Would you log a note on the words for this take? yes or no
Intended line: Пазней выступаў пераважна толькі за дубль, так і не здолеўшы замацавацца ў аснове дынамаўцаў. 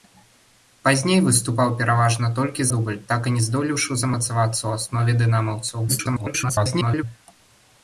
yes